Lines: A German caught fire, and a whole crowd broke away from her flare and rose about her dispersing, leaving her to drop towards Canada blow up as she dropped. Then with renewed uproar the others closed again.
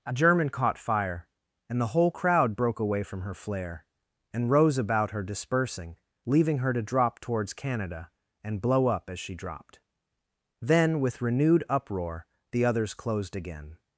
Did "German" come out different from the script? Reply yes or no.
no